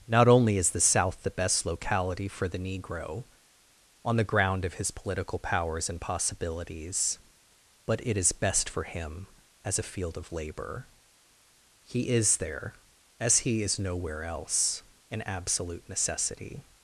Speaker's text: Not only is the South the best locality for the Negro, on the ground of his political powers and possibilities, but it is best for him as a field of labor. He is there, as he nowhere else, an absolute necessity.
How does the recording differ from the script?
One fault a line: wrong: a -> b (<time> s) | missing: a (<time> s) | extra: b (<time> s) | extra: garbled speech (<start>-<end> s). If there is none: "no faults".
extra: is (13.6 s)